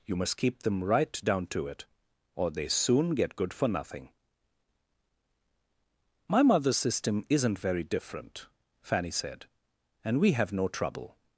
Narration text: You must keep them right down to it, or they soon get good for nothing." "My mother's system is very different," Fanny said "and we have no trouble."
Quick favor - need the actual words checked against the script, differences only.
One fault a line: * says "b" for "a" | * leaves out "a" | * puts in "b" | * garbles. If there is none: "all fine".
* says "isn't" for "is"